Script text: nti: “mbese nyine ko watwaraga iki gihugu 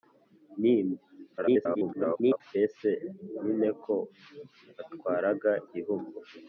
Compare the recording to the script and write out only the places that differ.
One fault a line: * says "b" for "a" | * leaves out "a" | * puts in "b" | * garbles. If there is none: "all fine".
* garbles
* leaves out "iki"